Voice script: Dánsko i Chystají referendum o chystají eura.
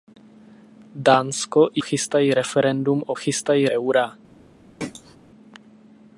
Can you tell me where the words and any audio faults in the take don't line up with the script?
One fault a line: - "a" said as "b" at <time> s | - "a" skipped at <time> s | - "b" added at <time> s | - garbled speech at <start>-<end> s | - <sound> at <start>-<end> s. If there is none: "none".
- throat clearing at 4.8-5.2 s